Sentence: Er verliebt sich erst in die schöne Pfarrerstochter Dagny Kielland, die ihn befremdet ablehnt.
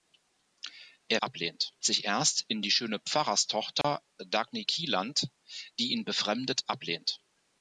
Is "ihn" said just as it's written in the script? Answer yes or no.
yes